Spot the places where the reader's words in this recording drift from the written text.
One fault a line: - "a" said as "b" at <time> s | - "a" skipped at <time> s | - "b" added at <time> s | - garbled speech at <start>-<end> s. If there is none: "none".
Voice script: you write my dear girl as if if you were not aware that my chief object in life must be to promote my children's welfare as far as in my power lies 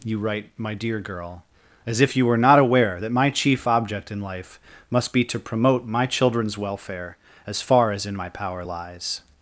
- "if" skipped at 2.1 s